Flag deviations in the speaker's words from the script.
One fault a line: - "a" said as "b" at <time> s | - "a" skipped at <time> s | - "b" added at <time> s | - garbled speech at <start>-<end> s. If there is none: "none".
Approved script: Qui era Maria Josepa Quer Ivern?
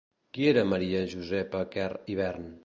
none